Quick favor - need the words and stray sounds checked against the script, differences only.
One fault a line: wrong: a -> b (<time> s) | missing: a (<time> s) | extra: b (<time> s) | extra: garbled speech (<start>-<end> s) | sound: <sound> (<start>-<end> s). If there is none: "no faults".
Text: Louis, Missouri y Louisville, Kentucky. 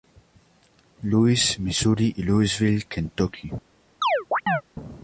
sound: chirp (4.0-4.6 s)